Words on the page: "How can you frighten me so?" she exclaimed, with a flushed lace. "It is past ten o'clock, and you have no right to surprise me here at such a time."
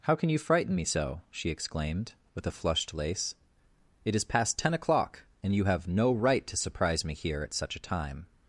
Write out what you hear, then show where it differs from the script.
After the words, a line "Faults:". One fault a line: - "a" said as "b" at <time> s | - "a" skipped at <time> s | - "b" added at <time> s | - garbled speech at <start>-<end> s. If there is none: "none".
"How can you frighten me so?" she exclaimed, with a flushed lace. "It is past ten o'clock, and you have no right to surprise me here at such a time."
Faults:
none